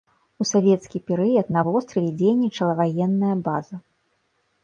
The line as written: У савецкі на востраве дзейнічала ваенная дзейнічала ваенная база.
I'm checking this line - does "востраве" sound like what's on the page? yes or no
yes